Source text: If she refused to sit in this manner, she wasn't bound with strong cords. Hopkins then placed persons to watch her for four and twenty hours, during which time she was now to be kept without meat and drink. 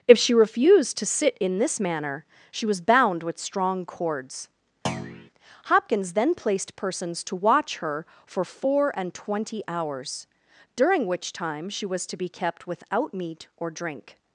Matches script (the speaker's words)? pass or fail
fail